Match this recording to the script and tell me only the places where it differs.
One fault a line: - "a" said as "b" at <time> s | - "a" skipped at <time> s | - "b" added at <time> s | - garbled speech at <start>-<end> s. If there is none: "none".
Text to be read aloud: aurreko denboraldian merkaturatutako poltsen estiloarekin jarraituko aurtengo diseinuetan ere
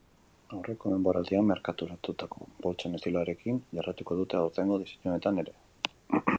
- "dute" added at 4.2 s